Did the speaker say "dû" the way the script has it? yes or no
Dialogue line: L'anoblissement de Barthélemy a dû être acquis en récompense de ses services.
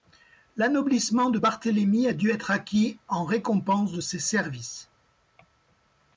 yes